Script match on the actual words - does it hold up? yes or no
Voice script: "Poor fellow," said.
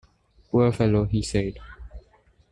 no